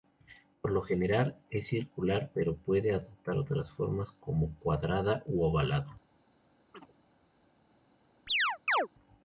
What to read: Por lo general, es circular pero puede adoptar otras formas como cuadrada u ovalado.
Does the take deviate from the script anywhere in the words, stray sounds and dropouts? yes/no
yes